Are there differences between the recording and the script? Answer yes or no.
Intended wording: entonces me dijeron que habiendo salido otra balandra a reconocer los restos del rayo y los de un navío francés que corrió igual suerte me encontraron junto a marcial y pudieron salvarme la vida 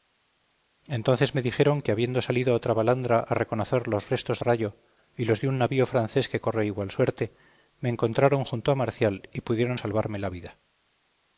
yes